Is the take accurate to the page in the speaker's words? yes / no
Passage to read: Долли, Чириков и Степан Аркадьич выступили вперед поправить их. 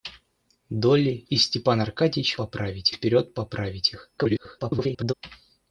no